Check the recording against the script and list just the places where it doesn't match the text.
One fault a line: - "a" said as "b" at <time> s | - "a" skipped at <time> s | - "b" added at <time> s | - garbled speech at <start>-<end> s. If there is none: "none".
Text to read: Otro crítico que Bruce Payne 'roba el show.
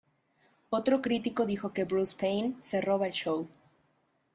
- "dijo" added at 1.4 s
- "se" added at 2.6 s